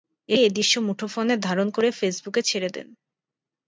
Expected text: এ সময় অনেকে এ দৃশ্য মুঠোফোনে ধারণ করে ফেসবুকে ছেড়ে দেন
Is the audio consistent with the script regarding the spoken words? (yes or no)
no